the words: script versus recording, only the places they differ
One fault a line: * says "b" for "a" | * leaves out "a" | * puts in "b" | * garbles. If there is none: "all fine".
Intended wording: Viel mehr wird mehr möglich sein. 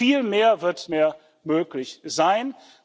all fine